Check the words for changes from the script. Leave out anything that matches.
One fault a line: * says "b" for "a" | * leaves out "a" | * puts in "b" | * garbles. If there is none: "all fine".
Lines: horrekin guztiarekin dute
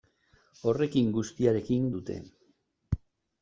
all fine